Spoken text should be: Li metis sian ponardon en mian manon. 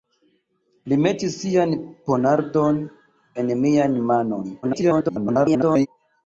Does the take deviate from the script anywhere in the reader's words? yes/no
yes